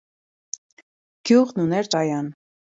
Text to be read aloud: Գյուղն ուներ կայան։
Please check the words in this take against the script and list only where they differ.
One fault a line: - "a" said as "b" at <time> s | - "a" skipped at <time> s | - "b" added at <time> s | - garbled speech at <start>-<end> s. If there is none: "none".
none